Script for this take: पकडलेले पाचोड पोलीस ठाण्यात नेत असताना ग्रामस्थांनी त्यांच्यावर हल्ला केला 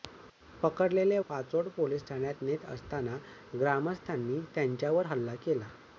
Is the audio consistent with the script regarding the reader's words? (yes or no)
yes